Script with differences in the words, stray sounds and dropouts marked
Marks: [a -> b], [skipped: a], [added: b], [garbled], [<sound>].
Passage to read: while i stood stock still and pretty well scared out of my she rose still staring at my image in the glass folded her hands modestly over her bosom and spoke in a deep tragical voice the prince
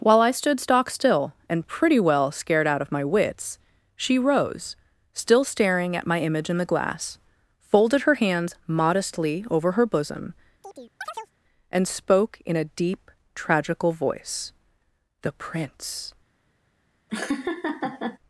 while i stood stock still and pretty well scared out of my [added: wits] she rose still staring at my image in the glass folded her hands modestly over her bosom [chirp] and spoke in a deep tragical voice the prince [laugh]